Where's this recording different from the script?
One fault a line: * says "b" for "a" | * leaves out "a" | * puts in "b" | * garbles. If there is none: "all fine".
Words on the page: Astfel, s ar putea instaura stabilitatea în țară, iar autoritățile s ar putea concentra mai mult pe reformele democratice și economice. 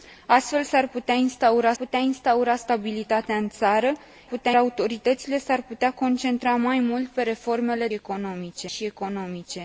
* puts in "putea instaura"
* says "putea" for "iar"
* says "economice" for "democratice"